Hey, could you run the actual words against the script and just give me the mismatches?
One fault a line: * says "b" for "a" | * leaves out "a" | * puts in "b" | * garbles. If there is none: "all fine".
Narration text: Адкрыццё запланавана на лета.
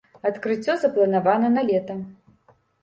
all fine